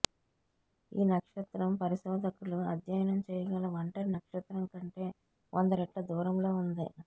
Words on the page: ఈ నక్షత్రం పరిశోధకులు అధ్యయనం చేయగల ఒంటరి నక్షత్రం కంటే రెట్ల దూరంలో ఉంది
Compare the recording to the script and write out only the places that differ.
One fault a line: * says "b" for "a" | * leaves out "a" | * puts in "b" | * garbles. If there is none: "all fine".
* puts in "వంద"